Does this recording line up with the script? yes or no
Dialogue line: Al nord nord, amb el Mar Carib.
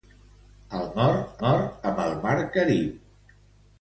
yes